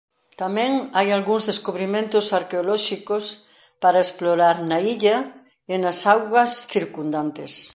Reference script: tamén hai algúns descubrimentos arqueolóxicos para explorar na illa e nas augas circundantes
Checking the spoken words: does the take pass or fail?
pass